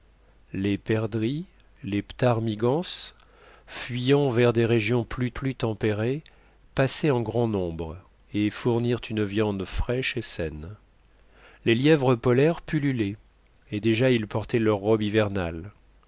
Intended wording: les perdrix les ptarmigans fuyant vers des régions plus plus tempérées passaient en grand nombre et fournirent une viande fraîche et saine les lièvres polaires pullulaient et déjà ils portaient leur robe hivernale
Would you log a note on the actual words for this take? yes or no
no